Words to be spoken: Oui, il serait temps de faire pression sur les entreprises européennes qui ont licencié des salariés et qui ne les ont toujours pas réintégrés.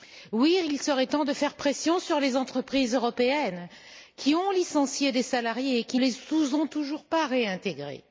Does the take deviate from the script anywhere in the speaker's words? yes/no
yes